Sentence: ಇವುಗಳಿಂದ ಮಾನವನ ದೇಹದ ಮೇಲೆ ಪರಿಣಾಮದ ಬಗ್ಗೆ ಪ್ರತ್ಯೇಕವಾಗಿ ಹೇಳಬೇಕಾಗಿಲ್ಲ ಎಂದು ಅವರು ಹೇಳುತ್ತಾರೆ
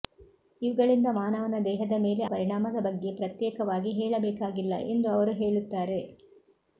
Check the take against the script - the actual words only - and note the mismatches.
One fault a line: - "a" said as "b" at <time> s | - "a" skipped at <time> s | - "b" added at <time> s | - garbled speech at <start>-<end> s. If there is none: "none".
none